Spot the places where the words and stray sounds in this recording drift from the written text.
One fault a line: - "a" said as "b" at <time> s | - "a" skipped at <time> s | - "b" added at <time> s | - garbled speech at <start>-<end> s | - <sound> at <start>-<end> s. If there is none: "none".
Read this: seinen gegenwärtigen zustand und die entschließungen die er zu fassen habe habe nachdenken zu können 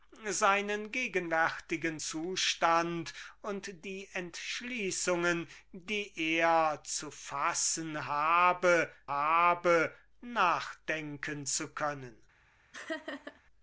- laugh at 12.7-13.4 s